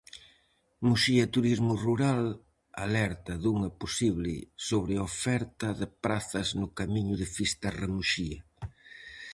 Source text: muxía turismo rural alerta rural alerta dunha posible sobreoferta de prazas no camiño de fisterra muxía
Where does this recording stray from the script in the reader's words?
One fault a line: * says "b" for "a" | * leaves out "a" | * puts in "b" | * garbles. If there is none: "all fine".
* leaves out "rural alerta"